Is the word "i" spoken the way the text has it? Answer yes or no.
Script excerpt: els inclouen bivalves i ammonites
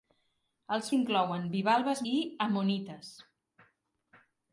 yes